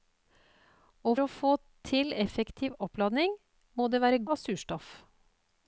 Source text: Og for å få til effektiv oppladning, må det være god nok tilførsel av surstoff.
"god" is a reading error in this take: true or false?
true